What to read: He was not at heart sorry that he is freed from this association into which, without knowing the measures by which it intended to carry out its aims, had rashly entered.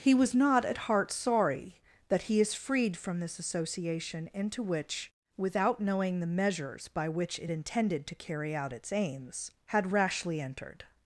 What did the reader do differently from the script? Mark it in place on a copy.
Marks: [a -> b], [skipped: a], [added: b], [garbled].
He was not at heart sorry that he is freed from this association into which, without knowing the measures by which it intended to carry out its aims, had rashly entered.